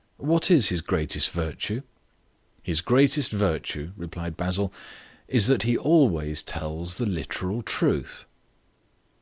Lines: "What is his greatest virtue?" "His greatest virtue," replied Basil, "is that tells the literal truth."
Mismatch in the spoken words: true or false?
true